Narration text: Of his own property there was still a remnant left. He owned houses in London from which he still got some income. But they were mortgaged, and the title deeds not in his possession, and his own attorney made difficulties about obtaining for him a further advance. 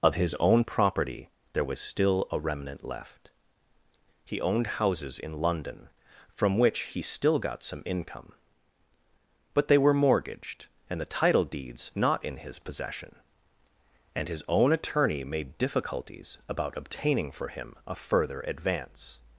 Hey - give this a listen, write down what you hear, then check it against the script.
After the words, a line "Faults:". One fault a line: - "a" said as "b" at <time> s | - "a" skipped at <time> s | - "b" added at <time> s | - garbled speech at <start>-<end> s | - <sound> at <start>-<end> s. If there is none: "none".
Of his own property there was still a remnant left. He owned houses in London from which he still got some income. But they were mortgaged, and the title deeds not in his possession, and his own attorney made difficulties about obtaining for him a further advance.
Faults:
none